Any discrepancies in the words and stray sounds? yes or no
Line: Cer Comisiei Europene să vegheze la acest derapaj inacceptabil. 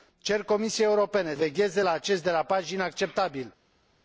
yes